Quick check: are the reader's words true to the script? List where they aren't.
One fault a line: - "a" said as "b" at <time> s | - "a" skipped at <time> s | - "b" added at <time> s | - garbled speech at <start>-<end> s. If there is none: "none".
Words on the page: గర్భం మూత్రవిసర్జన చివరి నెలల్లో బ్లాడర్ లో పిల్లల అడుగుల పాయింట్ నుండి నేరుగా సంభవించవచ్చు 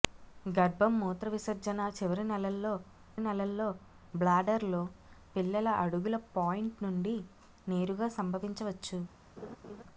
- "నెలల్లో" added at 3.2 s